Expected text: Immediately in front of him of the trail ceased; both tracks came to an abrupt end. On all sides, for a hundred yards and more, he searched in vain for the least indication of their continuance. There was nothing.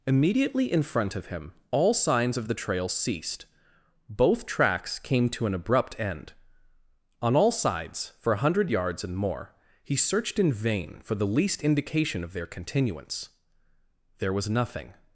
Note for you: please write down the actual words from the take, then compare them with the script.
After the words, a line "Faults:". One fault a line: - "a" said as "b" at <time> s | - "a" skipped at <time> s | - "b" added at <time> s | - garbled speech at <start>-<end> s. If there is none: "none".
Immediately in front of him all signs of the trail ceased; both tracks came to an abrupt end. On all sides, for a hundred yards and more, he searched in vain for the least indication of their continuance. There was nothing.
Faults:
- "all signs" added at 1.7 s